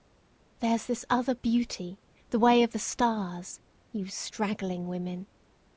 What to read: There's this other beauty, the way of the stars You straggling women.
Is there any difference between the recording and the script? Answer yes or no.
no